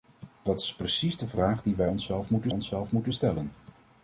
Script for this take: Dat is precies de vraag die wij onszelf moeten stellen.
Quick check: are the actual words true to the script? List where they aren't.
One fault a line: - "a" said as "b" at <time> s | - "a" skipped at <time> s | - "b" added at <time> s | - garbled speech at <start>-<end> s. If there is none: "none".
- "onszelf moeten" added at 2.5 s